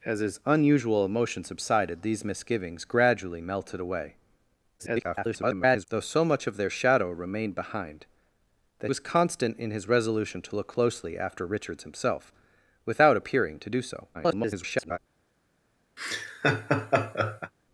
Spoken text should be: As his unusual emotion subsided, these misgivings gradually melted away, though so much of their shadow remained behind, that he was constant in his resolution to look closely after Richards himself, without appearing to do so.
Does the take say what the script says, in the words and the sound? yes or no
no